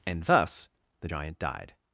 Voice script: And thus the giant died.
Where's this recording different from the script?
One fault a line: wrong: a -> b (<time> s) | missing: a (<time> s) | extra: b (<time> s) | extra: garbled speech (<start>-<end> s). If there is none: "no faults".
no faults